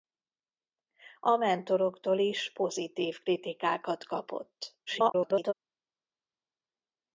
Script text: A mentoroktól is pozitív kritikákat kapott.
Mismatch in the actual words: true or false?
true